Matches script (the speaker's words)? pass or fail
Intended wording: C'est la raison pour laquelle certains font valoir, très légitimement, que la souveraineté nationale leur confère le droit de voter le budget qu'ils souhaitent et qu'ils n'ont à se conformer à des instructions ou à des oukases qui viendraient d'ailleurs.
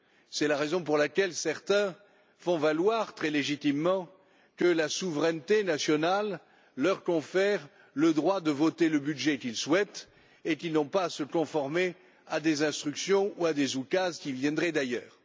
fail